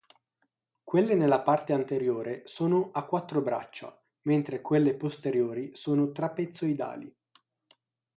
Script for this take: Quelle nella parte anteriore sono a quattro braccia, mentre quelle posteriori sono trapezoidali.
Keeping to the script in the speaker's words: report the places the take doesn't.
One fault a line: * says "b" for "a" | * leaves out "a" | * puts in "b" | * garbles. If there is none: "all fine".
all fine